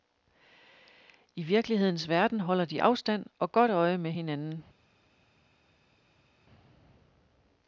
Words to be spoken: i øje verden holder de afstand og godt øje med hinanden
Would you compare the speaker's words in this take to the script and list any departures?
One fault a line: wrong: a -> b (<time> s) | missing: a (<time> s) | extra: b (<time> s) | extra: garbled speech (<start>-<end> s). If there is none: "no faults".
wrong: øje -> virkelighedens (1.4 s)